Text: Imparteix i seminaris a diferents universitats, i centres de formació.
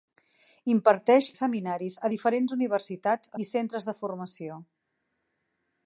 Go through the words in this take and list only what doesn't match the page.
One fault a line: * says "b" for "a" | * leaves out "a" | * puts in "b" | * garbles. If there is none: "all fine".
all fine